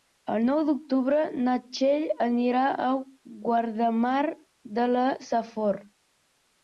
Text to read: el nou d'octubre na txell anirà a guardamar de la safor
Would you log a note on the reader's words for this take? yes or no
no